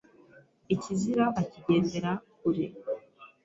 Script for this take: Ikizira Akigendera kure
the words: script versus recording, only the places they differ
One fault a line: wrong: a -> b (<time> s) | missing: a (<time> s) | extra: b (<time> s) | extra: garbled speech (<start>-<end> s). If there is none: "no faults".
no faults